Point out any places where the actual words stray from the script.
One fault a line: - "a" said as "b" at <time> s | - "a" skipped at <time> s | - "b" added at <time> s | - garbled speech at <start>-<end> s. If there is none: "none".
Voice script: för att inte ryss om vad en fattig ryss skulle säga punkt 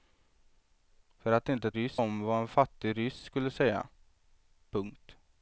none